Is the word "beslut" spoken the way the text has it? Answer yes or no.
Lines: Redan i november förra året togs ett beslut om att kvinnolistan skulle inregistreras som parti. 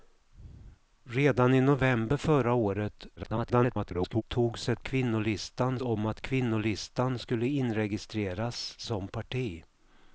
no